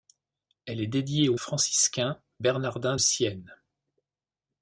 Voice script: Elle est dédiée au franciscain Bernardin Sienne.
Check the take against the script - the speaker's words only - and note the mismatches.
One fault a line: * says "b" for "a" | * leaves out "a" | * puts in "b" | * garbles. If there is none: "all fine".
all fine